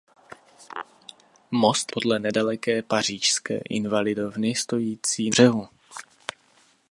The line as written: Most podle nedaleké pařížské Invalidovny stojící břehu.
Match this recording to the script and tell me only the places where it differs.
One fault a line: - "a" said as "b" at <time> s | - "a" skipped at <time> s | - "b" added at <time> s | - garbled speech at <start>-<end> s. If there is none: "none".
none